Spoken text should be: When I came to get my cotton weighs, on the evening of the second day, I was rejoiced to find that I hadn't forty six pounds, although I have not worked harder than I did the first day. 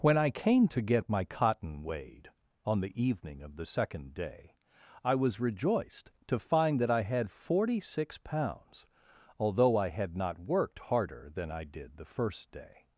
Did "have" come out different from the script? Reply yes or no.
yes